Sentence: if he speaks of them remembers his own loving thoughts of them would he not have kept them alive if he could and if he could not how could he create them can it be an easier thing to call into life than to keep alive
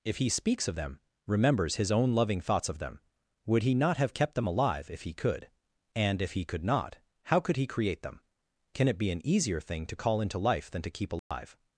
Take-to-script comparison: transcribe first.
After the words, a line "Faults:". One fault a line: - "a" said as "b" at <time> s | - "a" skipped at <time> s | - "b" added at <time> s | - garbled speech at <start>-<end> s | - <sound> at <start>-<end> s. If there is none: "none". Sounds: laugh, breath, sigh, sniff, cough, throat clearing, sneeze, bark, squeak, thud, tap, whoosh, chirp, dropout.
if he speaks of them remembers his own loving thoughts of them would he not have kept them alive if he could and if he could not how could he create them can it be an easier thing to call into life than to keep alive
Faults:
- dropout at 11.2-11.3 s